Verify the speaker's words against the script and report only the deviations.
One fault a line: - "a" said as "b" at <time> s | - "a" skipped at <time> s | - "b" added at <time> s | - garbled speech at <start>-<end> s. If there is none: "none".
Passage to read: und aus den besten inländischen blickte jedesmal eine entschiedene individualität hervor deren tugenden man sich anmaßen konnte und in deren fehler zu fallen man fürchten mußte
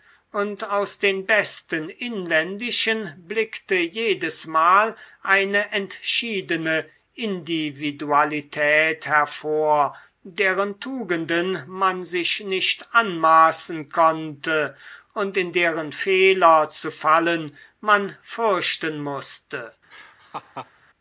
- "nicht" added at 12.5 s